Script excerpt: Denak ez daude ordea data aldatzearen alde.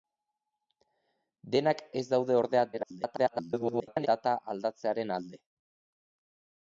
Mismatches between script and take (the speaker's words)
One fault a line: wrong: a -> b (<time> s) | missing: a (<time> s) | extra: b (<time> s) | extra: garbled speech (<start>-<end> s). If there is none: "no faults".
extra: garbled speech (2.7-4.1 s)